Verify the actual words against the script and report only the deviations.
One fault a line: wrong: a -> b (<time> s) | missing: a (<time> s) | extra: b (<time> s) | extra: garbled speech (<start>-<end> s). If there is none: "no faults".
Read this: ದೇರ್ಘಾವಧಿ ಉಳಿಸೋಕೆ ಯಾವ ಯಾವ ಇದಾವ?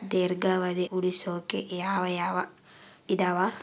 no faults